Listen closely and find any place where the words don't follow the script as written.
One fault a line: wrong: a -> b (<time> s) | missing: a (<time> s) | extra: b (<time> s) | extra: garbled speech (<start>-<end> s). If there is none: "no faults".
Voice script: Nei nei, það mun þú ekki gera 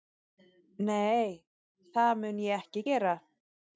missing: nei (1.3 s)
wrong: þú -> ég (2.5 s)